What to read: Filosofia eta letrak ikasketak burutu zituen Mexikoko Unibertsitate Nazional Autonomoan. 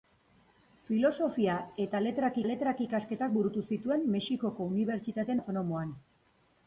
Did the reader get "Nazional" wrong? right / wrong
wrong